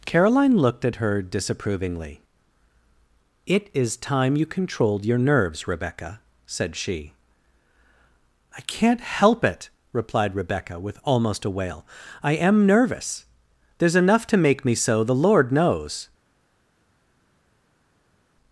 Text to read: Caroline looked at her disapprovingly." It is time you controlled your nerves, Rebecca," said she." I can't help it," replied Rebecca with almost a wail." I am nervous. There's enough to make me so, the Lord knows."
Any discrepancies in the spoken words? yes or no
no